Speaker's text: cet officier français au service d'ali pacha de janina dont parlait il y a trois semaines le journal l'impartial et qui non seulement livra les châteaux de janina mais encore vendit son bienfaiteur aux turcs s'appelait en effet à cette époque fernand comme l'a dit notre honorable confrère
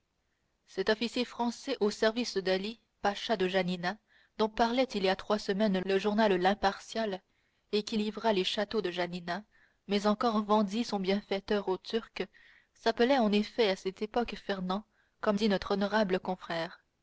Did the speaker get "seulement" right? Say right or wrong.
wrong